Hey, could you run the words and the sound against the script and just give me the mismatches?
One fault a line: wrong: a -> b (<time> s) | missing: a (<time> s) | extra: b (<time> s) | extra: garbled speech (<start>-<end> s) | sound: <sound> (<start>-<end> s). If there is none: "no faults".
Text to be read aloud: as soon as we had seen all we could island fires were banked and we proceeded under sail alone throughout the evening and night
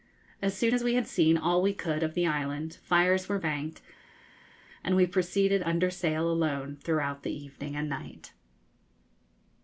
extra: of the (2.0 s)